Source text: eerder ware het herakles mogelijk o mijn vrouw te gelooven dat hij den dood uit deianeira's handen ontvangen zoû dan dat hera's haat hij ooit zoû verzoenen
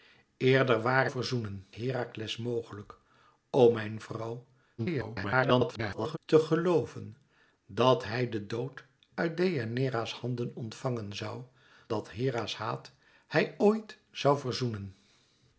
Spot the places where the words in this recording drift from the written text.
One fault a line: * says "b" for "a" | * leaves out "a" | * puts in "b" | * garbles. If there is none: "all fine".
* says "verzoenen" for "het"
* garbles
* leaves out "dan"